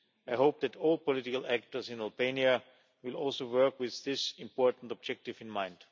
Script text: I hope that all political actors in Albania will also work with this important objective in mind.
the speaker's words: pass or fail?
pass